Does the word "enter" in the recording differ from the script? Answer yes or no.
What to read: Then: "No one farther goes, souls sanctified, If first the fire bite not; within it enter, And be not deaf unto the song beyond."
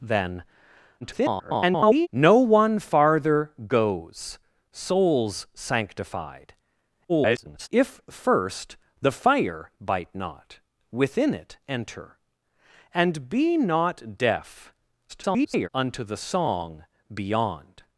no